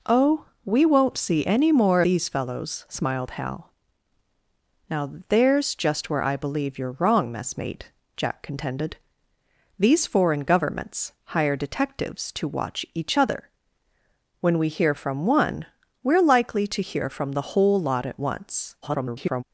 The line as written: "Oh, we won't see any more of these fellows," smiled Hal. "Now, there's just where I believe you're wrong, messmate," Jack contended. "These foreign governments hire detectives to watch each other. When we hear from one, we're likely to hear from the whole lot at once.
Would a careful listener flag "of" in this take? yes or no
yes